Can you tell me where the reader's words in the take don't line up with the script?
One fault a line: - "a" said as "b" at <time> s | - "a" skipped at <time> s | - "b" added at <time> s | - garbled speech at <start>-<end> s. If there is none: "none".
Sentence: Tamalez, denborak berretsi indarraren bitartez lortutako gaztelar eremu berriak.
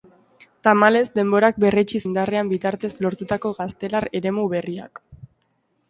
none